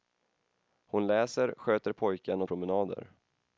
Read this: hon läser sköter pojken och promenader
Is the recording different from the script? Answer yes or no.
no